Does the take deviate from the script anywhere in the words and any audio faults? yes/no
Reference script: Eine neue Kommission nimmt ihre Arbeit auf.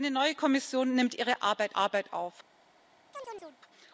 yes